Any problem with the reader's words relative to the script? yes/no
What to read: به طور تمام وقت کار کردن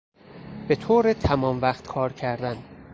no